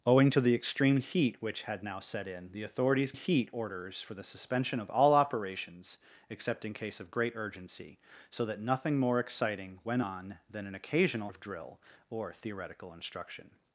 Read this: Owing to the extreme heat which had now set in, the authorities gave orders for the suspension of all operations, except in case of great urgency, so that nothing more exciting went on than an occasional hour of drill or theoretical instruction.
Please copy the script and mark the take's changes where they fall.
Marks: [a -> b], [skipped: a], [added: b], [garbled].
Owing to the extreme heat which had now set in, the authorities [gave -> heat] orders for the suspension of all operations, except in case of great urgency, so that nothing more exciting went on than an occasional [skipped: hour] of drill or theoretical instruction.